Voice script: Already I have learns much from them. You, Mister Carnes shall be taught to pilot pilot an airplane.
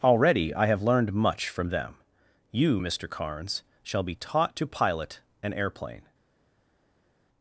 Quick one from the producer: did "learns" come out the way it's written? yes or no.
no